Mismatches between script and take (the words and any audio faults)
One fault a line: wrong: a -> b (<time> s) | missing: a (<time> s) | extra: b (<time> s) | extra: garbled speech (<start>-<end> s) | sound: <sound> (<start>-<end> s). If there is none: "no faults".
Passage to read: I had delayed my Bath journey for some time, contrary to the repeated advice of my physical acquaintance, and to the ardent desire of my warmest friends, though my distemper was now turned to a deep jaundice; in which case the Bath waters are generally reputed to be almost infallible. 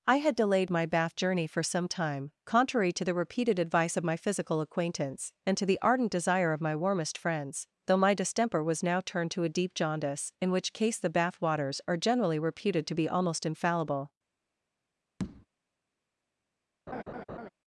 sound: tap (15.2-15.5 s)
sound: laugh (16.9-17.5 s)